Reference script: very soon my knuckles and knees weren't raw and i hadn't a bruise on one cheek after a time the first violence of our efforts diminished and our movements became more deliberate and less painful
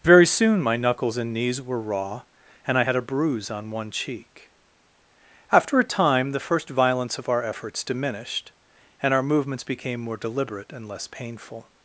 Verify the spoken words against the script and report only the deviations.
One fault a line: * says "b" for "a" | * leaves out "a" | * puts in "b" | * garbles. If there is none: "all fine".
* says "were" for "weren't"
* says "had" for "hadn't"